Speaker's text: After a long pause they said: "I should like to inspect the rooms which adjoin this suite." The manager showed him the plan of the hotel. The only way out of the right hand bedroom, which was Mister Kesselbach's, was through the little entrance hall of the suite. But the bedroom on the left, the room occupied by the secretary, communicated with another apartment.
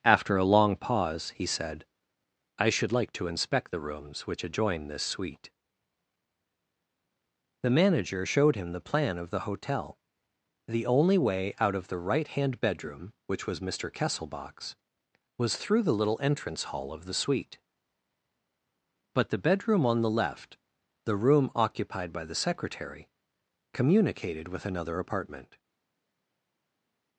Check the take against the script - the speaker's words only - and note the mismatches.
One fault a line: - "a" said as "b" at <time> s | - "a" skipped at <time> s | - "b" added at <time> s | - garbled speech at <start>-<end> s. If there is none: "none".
- "they" said as "he" at 1.3 s